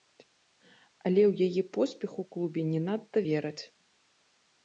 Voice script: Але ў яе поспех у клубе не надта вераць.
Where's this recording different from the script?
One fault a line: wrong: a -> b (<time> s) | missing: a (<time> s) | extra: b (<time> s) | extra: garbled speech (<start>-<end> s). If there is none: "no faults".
no faults